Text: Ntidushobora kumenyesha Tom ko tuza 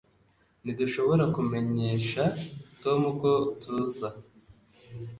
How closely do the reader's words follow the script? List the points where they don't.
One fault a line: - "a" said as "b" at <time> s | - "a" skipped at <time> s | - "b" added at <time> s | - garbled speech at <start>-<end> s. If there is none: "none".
none